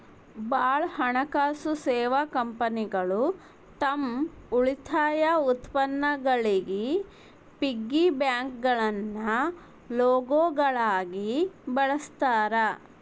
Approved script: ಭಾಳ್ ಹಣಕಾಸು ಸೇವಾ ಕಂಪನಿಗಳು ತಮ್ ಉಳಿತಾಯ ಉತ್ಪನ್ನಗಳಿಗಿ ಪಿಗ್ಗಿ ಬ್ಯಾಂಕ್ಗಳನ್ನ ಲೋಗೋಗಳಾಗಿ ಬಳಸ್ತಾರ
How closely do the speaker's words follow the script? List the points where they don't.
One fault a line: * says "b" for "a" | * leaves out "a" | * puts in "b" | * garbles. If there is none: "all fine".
all fine